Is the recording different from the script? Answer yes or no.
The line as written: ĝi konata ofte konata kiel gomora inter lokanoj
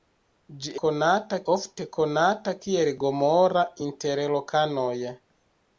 no